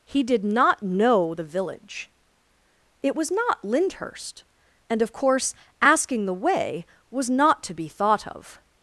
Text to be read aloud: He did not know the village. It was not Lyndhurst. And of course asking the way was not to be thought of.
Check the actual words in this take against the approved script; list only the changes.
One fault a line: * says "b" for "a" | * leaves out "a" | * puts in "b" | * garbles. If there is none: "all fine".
all fine